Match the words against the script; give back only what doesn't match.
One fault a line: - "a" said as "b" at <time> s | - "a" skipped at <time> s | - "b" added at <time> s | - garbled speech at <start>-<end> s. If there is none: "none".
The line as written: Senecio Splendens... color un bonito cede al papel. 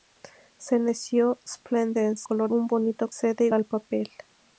none